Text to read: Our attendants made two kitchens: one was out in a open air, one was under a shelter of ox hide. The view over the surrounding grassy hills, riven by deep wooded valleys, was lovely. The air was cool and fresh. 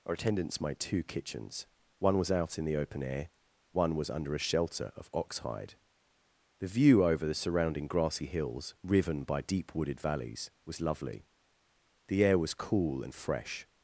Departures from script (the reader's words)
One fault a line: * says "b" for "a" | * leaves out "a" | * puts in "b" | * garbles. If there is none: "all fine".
* says "the" for "a"